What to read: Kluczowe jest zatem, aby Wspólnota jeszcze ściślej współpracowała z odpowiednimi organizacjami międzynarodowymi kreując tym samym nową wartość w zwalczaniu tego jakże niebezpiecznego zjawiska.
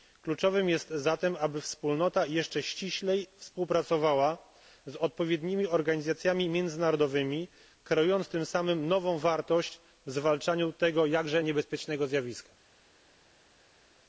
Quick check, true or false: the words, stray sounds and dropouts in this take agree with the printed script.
true